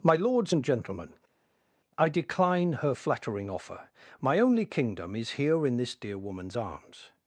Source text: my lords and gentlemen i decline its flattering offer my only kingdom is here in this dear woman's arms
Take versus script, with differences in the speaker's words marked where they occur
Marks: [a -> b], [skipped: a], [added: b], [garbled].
my lords and gentlemen i decline [its -> her] flattering offer my only kingdom is here in this dear woman's arms